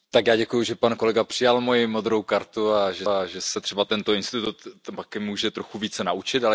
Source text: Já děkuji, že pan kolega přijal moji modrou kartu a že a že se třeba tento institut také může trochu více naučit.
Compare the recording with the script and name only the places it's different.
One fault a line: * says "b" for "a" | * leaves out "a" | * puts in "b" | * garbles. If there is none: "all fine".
all fine